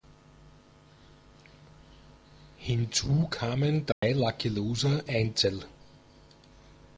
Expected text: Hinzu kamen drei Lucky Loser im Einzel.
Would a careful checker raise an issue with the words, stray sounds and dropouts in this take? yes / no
yes